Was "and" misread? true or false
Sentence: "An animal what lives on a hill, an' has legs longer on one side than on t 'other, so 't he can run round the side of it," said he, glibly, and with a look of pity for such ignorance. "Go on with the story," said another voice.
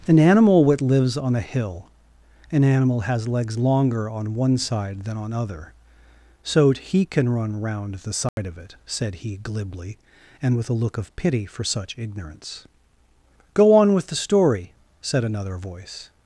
false